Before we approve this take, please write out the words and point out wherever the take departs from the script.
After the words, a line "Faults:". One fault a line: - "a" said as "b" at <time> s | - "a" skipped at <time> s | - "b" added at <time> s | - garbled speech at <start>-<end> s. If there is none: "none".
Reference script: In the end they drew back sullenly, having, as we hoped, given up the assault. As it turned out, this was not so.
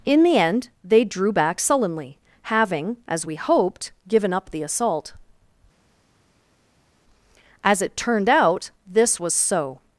In the end they drew back sullenly, having, as we hoped, given up the assault. As it turned out, this was so.
Faults:
- "not" skipped at 9.3 s